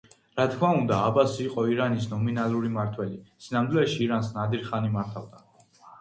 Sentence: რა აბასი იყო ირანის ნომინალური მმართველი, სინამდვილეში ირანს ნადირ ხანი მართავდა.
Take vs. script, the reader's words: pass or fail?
fail